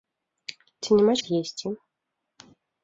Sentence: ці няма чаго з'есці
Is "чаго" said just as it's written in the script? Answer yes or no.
no